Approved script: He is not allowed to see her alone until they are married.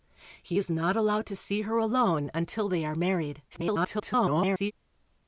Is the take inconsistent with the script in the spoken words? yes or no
yes